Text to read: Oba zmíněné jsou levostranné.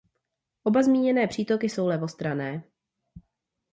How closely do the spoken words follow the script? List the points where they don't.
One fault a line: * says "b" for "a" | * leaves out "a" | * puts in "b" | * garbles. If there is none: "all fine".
* puts in "přítoky"